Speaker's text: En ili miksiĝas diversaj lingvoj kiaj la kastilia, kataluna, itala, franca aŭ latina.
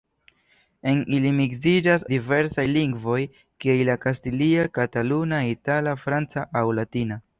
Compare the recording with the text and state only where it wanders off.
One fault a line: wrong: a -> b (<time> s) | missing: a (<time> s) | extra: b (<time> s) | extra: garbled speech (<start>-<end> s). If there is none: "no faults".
no faults